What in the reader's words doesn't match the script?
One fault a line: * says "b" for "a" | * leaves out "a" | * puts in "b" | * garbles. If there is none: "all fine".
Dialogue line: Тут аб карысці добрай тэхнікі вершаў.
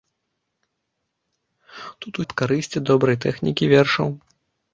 all fine